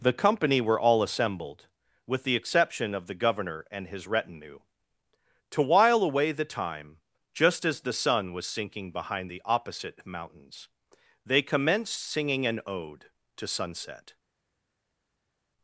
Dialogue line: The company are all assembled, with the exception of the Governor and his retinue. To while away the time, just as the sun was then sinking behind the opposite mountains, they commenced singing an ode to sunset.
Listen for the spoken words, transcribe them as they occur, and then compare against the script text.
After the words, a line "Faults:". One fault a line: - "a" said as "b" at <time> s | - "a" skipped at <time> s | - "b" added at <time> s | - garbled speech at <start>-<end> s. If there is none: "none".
The company were all assembled, with the exception of the Governor and his retinue. To while away the time, just as the sun was sinking behind the opposite mountains, they commenced singing an ode to sunset.
Faults:
- "are" said as "were" at 0.6 s
- "then" skipped at 8.5 s